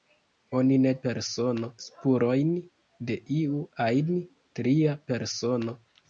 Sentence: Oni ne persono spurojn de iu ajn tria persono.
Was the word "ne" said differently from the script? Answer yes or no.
no